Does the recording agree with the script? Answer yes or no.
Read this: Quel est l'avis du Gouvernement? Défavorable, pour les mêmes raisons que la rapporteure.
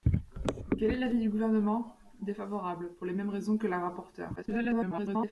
no